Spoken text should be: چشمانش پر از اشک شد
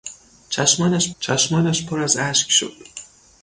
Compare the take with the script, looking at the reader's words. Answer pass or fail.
fail